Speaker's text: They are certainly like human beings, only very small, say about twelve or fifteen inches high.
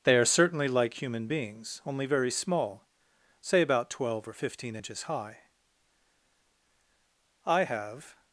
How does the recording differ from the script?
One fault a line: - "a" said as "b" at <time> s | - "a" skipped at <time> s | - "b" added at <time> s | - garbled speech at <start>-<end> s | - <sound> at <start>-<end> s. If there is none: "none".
- "I have" added at 7.5 s